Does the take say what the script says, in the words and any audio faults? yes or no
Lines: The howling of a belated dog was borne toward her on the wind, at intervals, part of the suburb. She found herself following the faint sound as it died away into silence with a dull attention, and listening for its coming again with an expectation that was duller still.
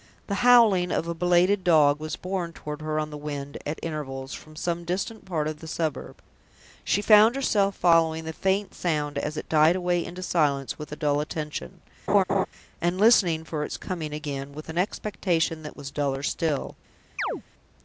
no